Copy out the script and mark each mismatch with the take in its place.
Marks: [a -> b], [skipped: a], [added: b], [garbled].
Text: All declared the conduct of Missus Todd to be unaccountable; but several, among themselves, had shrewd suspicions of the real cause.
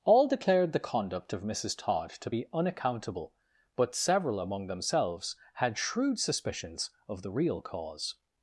All declared the conduct of Missus Todd to be unaccountable; but several, among themselves, had shrewd suspicions of the real cause.